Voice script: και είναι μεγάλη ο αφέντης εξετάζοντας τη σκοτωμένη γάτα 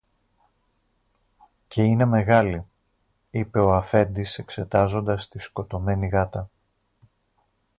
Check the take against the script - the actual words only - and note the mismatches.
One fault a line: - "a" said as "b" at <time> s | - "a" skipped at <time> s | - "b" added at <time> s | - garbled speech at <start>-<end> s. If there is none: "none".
- "είπε" added at 3.3 s